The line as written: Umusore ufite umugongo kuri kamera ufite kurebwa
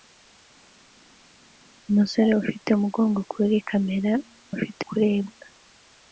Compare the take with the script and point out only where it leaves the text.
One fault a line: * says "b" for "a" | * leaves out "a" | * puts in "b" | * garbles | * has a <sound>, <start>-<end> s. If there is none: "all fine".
all fine